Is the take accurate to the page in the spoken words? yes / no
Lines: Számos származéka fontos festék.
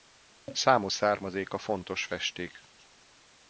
yes